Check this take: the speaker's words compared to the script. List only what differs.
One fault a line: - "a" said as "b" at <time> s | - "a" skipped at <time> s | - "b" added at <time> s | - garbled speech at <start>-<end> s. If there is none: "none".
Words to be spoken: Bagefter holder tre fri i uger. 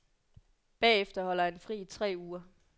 - "tre" said as "han" at 1.4 s
- "tre" added at 1.9 s